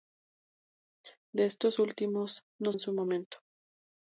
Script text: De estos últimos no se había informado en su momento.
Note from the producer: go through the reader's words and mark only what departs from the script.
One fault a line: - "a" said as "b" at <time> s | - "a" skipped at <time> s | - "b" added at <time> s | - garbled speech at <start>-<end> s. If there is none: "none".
- "se había informado" skipped at 2.7 s